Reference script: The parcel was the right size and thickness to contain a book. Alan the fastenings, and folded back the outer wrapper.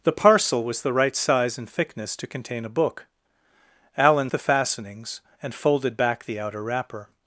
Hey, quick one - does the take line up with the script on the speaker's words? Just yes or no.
yes